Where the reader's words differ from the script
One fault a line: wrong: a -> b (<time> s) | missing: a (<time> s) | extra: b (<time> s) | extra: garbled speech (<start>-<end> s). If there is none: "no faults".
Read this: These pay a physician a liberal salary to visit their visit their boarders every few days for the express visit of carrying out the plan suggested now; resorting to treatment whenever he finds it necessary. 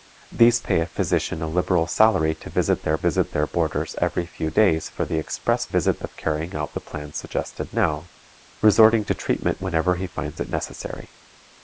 no faults